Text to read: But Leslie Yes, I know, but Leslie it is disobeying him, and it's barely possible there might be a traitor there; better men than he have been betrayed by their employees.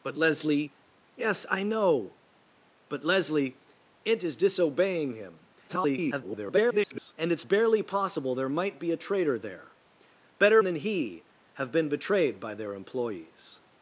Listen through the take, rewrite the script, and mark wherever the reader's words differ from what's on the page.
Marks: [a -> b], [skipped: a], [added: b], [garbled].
But Leslie Yes, I know, but Leslie it is disobeying him, [garbled] and it's barely possible there might be a traitor there; better [skipped: men] than he have been betrayed by their employees.